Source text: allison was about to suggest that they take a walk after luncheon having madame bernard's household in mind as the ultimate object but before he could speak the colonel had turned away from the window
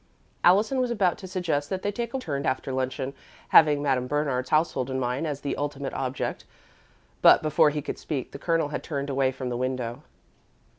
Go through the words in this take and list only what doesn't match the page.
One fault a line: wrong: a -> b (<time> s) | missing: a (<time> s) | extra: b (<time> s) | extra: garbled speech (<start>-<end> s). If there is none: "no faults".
wrong: walk -> turned (2.2 s)